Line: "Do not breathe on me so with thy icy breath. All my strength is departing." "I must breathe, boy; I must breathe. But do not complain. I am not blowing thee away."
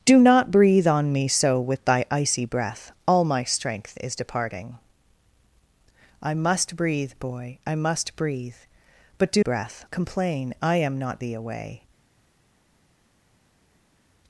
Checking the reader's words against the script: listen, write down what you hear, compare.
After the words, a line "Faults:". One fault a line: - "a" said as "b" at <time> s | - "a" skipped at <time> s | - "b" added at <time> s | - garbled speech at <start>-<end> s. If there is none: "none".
"Do not breathe on me so with thy icy breath. All my strength is departing." "I must breathe, boy; I must breathe. But do breath complain. I am not thee away."
Faults:
- "not" said as "breath" at 9.4 s
- "blowing" skipped at 11.2 s